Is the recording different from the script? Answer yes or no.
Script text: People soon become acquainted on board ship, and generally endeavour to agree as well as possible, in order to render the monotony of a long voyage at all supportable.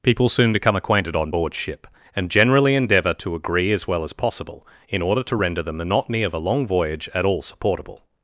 no